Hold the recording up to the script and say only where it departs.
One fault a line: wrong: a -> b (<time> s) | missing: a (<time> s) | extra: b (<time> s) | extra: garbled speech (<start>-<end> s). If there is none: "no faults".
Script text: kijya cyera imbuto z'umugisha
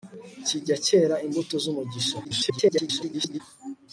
extra: garbled speech (2.2-3.4 s)